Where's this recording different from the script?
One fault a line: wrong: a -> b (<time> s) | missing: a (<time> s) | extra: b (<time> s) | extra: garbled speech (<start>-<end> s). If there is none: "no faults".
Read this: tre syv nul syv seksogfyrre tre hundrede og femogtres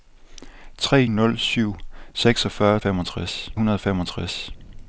missing: syv (1.1 s)
wrong: tre -> femogtres (2.8 s)